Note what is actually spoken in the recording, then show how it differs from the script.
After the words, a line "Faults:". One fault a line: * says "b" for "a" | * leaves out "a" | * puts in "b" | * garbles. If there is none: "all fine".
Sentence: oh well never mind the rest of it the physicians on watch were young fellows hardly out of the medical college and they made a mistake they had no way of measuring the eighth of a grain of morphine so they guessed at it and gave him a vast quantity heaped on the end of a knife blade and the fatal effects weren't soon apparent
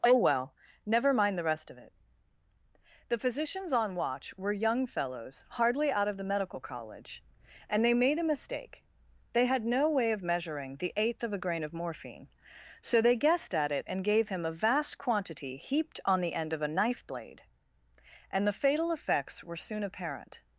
oh well never mind the rest of it the physicians on watch were young fellows hardly out of the medical college and they made a mistake they had no way of measuring the eighth of a grain of morphine so they guessed at it and gave him a vast quantity heaped on the end of a knife blade and the fatal effects were soon apparent
Faults:
* says "were" for "weren't"